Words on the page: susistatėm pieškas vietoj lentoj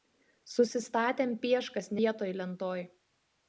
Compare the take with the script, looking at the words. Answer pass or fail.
pass